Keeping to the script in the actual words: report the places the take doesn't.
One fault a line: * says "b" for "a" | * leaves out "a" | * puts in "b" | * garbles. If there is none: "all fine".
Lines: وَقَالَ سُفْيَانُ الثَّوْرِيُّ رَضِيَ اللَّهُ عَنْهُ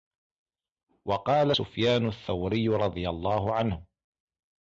all fine